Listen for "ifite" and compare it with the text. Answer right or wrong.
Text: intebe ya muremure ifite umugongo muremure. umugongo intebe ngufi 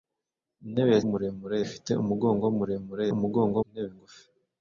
right